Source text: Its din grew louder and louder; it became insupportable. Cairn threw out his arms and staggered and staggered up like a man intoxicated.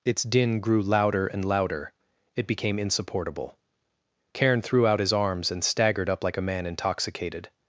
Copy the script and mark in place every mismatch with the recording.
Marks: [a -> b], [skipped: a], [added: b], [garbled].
Its din grew louder and louder; it became insupportable. Cairn threw out his arms and staggered [skipped: and staggered] up like a man intoxicated.